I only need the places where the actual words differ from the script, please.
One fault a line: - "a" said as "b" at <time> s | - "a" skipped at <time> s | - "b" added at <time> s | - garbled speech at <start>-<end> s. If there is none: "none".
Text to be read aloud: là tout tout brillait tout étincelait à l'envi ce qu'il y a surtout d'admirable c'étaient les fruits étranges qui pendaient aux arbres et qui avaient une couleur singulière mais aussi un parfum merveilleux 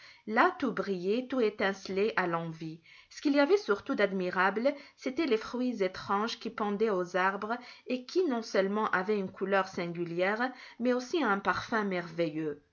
- "tout" skipped at 0.7 s
- "a" said as "avait" at 3.4 s
- "non seulement" added at 8.2 s